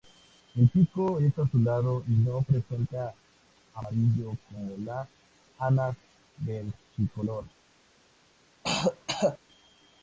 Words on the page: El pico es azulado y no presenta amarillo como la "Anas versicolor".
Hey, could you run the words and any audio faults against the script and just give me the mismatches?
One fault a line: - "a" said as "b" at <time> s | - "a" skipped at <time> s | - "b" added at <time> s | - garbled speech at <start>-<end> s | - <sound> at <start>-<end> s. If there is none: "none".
- throat clearing at 8.6-9.4 s